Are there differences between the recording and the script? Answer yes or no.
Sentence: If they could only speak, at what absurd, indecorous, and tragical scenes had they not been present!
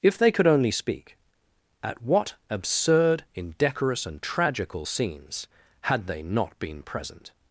no